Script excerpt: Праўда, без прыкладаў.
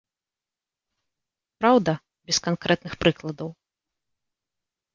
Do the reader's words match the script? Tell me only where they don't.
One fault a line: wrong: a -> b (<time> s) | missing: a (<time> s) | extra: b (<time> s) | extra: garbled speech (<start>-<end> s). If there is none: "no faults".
extra: канкрэтных (2.5 s)